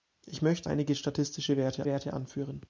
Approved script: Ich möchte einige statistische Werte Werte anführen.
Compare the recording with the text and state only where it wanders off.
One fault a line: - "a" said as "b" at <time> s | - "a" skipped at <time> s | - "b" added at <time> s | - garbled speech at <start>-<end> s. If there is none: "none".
none